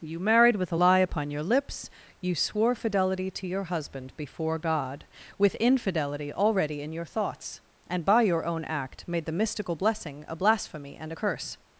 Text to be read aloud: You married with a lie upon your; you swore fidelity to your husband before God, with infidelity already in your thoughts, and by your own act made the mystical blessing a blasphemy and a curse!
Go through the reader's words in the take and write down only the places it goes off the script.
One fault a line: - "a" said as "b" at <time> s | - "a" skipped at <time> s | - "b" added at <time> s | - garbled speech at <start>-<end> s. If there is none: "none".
- "lips" added at 1.4 s